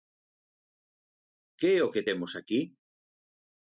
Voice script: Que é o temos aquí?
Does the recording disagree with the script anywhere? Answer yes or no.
yes